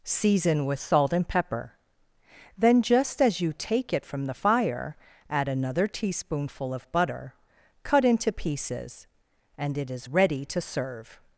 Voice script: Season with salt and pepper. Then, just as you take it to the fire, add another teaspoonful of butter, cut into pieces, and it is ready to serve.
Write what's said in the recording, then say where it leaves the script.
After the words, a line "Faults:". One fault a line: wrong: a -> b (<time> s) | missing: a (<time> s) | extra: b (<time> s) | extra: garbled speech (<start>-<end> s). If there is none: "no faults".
Season with salt and pepper. Then, just as you take it from the fire, add another teaspoonful of butter, cut into pieces, and it is ready to serve.
Faults:
wrong: to -> from (4.0 s)